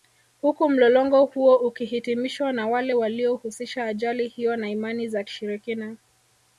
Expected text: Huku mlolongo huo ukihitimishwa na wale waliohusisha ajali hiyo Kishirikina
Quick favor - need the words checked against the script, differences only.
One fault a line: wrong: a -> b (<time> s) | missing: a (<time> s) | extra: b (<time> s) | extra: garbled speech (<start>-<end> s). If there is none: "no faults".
extra: na Imani za (4.6 s)